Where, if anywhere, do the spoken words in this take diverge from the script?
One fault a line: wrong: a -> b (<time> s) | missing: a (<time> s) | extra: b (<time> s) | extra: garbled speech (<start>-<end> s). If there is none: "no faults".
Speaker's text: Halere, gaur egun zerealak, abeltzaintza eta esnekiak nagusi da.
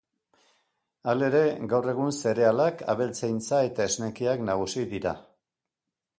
wrong: da -> dira (5.0 s)